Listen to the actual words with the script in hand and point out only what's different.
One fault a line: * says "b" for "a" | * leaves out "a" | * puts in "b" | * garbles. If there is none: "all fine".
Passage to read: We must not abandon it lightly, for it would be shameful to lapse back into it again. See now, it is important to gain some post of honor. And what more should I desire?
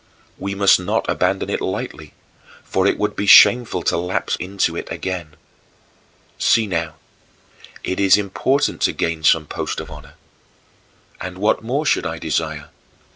* leaves out "back"